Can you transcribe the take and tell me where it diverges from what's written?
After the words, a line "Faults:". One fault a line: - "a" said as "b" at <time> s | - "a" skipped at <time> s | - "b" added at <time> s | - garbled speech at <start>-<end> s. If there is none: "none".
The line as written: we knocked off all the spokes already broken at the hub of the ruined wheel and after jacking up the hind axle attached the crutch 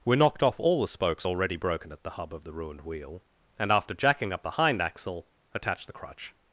we knocked off all the spokes already broken at the hub of the ruined wheel and after jacking up the hind axle attached the crutch
Faults:
none